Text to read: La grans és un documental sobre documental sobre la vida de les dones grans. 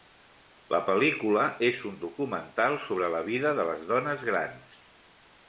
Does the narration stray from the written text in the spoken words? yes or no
yes